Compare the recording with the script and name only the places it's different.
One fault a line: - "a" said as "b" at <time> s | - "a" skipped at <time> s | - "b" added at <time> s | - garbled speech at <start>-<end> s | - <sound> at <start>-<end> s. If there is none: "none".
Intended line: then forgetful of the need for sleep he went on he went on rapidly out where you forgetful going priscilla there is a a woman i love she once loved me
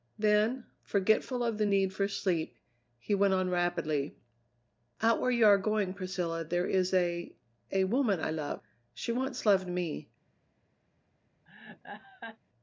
- "he went on" skipped at 3.5 s
- "forgetful" said as "are" at 5.4 s
- laugh at 11.5-12.4 s